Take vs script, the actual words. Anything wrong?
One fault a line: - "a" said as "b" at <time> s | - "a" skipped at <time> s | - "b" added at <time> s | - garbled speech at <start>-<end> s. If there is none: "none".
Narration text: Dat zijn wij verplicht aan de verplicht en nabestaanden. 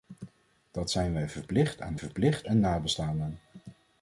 none